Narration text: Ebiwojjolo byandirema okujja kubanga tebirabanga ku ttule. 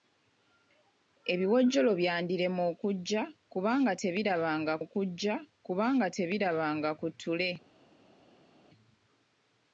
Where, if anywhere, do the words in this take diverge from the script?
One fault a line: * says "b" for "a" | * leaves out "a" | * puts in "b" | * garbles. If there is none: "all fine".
* puts in "okujja kubanga tebirabanga"